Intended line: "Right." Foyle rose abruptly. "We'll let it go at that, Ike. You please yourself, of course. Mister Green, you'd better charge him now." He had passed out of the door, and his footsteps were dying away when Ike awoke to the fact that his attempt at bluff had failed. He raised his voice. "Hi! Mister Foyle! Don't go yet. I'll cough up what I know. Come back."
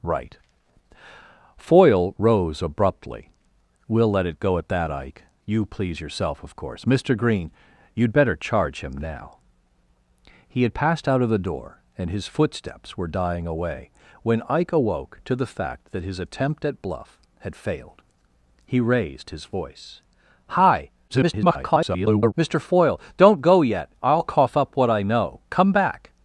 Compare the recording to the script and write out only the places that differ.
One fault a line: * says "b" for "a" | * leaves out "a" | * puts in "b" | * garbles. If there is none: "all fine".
* garbles